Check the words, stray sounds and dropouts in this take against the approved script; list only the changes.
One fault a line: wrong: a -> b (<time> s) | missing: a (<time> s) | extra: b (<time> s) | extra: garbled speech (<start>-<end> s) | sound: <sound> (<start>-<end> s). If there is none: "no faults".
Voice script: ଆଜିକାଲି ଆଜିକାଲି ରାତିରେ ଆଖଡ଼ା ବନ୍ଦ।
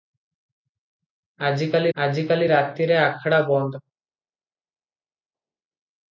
no faults